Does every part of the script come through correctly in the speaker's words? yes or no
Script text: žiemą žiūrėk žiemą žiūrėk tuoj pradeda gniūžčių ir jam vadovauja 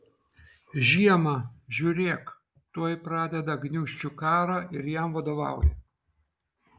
no